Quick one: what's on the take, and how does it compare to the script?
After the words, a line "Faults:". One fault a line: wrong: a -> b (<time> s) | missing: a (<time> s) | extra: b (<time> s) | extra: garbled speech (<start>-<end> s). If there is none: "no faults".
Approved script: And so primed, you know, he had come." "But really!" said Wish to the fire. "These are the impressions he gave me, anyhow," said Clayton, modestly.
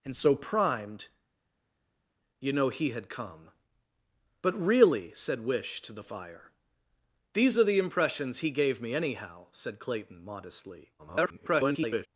And so primed, you know, he had come." "But really!" said Wish to the fire. "These are the impressions he gave me, anyhow," said Clayton, modestly. [garbled]
Faults:
extra: garbled speech (11.0-12.1 s)